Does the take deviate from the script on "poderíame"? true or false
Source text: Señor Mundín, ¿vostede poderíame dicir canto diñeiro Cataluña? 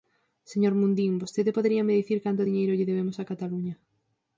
false